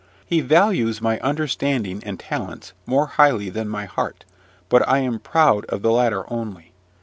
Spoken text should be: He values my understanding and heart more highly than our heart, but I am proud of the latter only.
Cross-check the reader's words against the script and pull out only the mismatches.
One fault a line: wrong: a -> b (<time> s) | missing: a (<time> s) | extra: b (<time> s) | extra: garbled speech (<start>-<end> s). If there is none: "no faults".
wrong: heart -> talents (2.2 s)
wrong: our -> my (3.7 s)